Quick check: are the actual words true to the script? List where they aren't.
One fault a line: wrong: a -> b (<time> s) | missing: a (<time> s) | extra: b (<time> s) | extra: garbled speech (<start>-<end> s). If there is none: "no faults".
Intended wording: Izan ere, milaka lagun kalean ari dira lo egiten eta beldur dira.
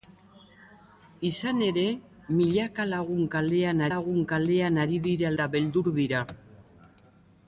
extra: lagun kalean (3.9 s)
missing: lo egiten (5.3 s)